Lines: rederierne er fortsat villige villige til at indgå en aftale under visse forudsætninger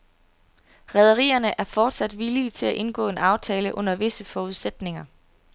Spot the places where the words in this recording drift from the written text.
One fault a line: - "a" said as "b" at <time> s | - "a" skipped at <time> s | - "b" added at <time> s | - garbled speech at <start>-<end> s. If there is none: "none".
- "villige" skipped at 2.5 s